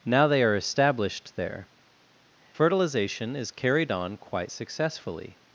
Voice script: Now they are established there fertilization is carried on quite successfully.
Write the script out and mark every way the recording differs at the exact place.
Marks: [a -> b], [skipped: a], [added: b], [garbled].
Now they are established there fertilization is carried on quite successfully.